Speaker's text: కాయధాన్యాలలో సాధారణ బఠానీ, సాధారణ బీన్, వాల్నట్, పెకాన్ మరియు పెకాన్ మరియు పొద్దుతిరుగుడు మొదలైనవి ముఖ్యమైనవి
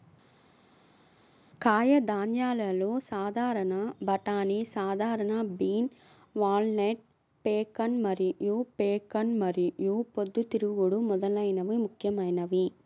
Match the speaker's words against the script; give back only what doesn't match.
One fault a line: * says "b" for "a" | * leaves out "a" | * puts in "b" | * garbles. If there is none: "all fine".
all fine